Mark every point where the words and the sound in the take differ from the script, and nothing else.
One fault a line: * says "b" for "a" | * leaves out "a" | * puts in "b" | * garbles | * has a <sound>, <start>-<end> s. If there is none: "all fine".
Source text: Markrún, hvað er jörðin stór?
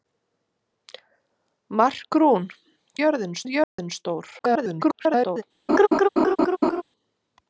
* says "jörðin" for "hvað"
* has a dropout, 3.6-3.8 s
* garbles
* has a laugh, 5.7-6.8 s